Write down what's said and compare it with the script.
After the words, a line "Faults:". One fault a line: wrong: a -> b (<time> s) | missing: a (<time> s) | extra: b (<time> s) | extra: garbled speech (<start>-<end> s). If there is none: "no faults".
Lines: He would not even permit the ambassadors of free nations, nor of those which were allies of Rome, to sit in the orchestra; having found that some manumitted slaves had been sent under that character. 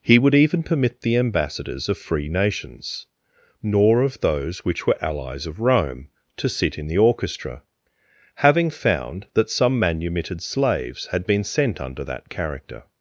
He would even permit the ambassadors of free nations, nor of those which were allies of Rome, to sit in the orchestra; having found that some manumitted slaves had been sent under that character.
Faults:
missing: not (0.3 s)